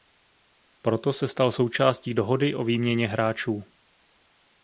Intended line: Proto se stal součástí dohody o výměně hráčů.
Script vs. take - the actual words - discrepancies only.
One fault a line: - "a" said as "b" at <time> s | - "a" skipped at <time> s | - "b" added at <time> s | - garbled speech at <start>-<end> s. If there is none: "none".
none